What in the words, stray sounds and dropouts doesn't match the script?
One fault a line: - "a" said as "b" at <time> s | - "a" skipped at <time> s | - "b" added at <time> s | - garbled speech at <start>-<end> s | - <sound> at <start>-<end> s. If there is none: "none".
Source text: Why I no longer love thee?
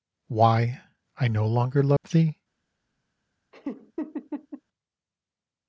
- dropout at 2.0-2.0 s
- laugh at 3.5-4.6 s